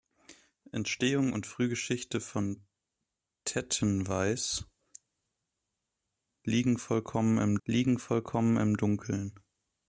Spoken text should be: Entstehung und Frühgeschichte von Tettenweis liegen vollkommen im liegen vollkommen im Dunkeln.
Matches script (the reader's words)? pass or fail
pass